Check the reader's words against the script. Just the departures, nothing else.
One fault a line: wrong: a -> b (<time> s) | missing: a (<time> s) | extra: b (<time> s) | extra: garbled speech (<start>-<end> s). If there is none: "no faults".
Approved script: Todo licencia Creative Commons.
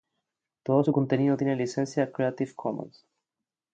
extra: su contenido tiene (0.8 s)